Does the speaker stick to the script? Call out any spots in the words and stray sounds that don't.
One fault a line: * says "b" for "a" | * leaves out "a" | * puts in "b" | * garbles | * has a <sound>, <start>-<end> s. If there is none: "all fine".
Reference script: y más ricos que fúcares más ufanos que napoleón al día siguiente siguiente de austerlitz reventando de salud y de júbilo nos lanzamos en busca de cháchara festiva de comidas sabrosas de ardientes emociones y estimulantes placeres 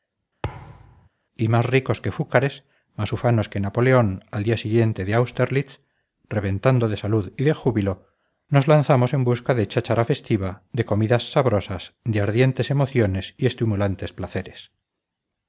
* has a thud, 0.4-1.1 s
* leaves out "siguiente"